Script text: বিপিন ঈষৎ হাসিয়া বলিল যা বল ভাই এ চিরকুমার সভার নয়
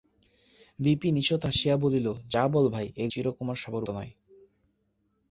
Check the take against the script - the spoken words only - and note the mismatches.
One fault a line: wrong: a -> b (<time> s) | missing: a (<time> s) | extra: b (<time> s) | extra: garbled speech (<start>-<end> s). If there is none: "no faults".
no faults